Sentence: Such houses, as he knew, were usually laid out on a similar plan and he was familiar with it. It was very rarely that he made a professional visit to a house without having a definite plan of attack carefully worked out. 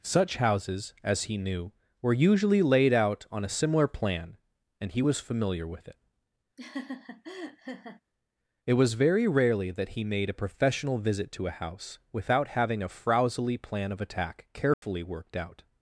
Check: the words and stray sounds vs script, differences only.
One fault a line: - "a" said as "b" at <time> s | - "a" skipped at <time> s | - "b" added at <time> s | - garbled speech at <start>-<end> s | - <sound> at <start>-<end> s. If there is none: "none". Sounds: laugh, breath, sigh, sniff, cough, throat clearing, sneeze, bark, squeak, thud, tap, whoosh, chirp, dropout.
- laugh at 6.6-8.0 s
- "definite" said as "frowsily" at 12.9 s
- dropout at 14.7-14.8 s